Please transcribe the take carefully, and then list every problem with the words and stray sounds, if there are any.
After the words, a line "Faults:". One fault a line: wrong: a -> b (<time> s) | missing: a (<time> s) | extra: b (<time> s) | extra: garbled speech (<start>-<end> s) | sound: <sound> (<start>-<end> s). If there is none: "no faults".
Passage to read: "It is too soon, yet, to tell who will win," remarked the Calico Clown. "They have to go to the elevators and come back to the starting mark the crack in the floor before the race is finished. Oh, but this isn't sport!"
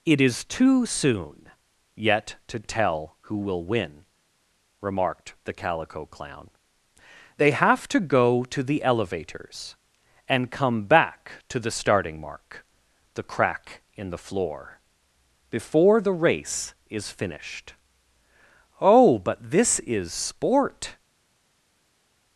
"It is too soon, yet, to tell who will win," remarked the Calico Clown. "They have to go to the elevators and come back to the starting mark the crack in the floor before the race is finished. Oh, but this is sport!"
Faults:
wrong: isn't -> is (19.8 s)